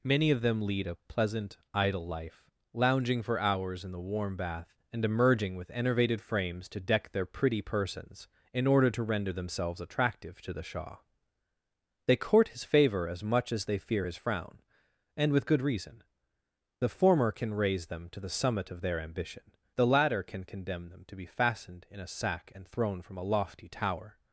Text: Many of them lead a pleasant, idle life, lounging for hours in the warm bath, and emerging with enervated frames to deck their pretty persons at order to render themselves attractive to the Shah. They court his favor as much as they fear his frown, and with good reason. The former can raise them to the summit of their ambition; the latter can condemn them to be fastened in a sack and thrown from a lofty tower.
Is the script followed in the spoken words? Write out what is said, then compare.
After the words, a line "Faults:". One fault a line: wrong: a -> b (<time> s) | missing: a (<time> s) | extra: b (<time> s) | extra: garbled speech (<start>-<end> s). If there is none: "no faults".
Many of them lead a pleasant, idle life, lounging for hours in the warm bath, and emerging with enervated frames to deck their pretty persons in order to render themselves attractive to the Shah. They court his favor as much as they fear his frown, and with good reason. The former can raise them to the summit of their ambition; the latter can condemn them to be fastened in a sack and thrown from a lofty tower.
Faults:
wrong: at -> in (8.5 s)